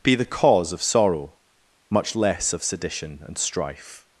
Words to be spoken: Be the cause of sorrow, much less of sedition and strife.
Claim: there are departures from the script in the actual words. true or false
false